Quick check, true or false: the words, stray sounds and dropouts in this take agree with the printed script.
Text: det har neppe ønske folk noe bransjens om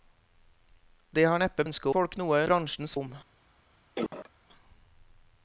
false